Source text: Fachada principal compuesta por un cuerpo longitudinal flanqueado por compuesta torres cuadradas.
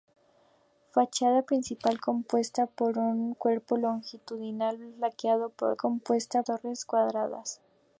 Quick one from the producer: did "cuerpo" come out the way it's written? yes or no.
yes